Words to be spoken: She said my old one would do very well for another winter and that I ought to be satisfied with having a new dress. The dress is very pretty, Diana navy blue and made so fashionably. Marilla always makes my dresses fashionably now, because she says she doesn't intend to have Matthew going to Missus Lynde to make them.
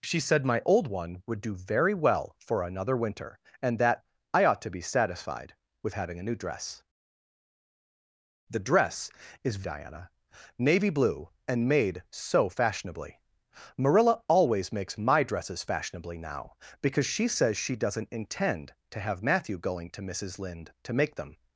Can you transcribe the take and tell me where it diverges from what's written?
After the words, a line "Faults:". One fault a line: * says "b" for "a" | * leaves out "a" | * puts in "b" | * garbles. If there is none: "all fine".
She said my old one would do very well for another winter and that I ought to be satisfied with having a new dress. The dress is Diana navy blue and made so fashionably. Marilla always makes my dresses fashionably now, because she says she doesn't intend to have Matthew going to Missus Lynde to make them.
Faults:
* leaves out "very pretty"